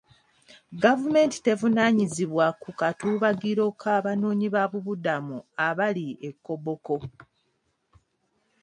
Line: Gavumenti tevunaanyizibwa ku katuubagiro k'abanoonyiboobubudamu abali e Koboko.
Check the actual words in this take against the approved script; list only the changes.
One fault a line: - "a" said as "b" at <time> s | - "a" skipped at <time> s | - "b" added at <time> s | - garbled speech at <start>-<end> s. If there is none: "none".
none